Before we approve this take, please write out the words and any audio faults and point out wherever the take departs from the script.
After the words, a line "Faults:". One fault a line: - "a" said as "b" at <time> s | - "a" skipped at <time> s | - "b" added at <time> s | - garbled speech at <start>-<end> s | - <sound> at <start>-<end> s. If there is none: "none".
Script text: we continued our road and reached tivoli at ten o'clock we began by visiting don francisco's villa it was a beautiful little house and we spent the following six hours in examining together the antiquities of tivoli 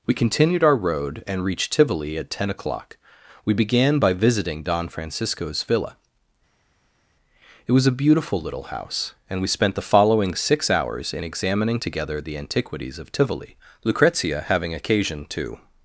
we continued our road and reached tivoli at ten o'clock we began by visiting don francisco's villa it was a beautiful little house and we spent the following six hours in examining together the antiquities of tivoli lucrezia having occasion to
Faults:
- "lucrezia having occasion to" added at 13.8 s